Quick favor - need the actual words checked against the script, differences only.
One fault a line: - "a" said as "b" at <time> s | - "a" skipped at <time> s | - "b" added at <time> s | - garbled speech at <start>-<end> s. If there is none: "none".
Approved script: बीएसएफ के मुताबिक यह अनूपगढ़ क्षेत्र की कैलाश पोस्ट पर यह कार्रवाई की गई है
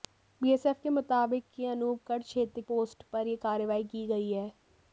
- "की कैलाश" skipped at 2.6 s